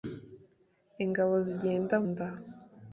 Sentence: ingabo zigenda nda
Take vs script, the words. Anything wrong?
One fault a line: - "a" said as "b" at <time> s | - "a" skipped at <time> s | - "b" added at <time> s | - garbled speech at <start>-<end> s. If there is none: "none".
none